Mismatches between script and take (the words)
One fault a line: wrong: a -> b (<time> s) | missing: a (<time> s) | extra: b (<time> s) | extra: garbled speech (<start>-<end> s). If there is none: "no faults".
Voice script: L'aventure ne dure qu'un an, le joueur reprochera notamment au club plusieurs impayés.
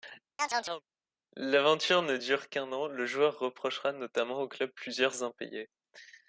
no faults